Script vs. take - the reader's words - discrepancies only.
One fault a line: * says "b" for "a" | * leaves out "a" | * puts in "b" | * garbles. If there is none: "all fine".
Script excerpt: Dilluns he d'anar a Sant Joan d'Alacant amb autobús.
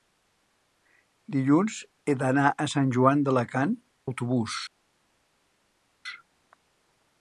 * leaves out "amb"